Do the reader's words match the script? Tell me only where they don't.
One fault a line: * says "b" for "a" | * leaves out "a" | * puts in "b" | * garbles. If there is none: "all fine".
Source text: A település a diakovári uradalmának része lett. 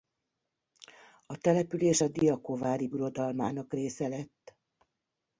all fine